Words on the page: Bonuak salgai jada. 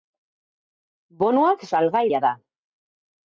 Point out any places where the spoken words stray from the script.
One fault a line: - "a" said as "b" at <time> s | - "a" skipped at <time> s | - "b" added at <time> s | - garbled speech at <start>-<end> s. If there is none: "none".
none